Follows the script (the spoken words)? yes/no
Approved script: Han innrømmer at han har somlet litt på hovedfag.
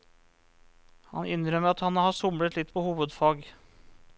yes